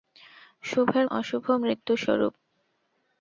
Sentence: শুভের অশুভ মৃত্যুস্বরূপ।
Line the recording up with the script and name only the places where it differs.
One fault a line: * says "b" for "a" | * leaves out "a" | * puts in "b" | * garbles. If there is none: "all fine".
all fine